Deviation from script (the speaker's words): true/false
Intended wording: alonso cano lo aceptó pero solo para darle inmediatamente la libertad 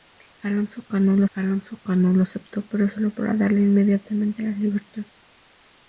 true